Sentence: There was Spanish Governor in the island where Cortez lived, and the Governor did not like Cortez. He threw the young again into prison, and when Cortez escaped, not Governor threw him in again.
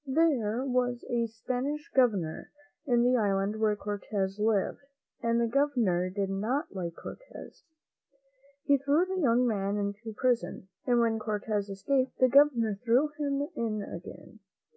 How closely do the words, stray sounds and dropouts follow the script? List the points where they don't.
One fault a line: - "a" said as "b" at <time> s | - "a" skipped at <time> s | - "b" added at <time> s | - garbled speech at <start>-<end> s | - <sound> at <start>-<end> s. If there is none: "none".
- "a" added at 1.1 s
- "again" said as "man" at 9.4 s
- "not" said as "the" at 12.2 s